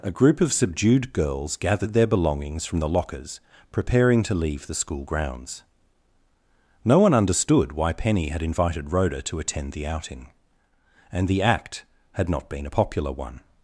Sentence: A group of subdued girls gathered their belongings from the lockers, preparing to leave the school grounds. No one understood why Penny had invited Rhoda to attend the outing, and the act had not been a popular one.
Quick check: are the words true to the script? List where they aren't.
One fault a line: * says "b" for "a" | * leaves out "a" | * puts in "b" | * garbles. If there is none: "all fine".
all fine